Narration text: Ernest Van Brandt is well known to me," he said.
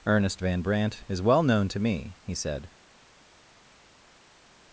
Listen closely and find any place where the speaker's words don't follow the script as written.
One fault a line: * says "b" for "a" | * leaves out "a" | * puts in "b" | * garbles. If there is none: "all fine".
all fine